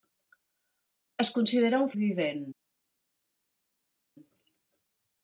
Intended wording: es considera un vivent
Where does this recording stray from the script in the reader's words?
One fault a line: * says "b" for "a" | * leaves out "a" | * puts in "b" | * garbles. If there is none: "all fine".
all fine